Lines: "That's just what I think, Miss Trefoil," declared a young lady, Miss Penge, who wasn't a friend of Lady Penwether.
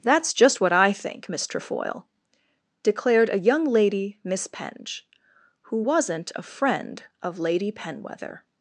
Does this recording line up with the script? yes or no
yes